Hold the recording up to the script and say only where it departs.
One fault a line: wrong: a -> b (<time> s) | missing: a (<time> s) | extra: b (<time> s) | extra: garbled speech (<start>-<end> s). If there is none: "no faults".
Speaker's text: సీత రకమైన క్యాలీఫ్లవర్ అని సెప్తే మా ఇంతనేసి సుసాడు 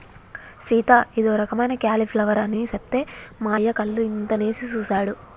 extra: ఇదో (1.2 s)
extra: అయ్య కళ్ళు (3.5 s)